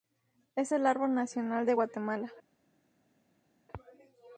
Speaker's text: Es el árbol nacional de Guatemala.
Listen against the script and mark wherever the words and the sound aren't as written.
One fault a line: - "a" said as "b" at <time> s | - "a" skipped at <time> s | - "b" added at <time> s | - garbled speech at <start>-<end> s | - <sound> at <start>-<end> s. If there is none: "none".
none